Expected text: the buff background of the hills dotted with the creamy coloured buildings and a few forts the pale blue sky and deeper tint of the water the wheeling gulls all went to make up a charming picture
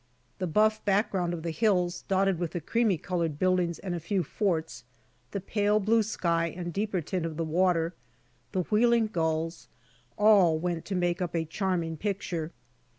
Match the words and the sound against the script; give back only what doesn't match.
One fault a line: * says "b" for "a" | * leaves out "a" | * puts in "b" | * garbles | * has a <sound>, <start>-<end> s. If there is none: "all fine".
all fine